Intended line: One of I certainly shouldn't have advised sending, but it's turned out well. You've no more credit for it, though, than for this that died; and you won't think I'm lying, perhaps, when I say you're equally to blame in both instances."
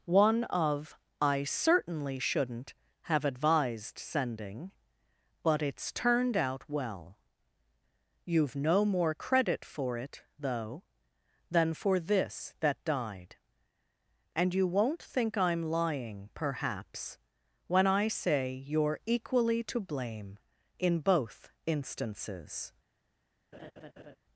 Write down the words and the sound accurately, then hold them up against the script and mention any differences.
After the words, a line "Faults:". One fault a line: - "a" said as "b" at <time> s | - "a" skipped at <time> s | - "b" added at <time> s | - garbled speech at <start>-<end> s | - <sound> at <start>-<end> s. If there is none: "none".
One of I certainly shouldn't have advised sending, but it's turned out well. You've no more credit for it, though, than for this that died; and you won't think I'm lying, perhaps, when I say you're equally to blame in both instances."
Faults:
- laugh at 23.5-24.2 s